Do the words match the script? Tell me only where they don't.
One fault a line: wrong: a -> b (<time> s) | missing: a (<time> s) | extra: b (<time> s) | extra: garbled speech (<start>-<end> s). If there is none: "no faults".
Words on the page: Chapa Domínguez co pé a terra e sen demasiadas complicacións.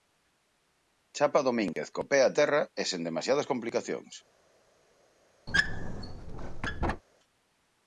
no faults